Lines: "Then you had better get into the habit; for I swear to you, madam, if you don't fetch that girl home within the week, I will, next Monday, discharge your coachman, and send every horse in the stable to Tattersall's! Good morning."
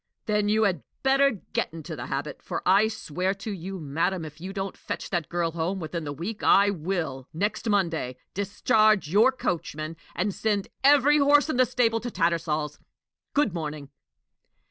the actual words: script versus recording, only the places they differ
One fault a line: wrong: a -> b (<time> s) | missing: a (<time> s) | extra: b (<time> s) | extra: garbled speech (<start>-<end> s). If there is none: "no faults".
no faults